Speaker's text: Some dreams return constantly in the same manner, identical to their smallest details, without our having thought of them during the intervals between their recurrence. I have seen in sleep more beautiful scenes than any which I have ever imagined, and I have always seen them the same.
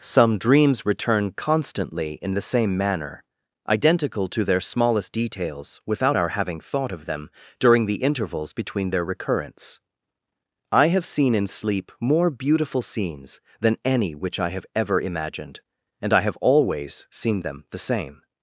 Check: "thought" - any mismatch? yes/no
no